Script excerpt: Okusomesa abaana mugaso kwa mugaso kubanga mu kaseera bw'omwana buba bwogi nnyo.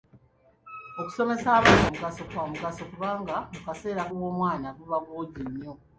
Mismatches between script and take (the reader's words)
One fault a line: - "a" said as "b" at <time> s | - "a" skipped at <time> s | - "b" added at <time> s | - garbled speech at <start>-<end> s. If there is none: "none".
none